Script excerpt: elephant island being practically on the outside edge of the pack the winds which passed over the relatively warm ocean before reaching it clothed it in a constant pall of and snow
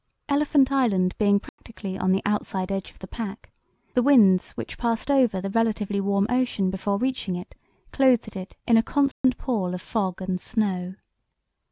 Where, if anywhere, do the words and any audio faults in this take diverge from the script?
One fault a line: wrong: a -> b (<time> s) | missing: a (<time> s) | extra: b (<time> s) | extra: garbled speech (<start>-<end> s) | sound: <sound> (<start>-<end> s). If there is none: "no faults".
sound: dropout (1.5-1.6 s)
sound: dropout (9.1-9.2 s)
extra: fog (9.8 s)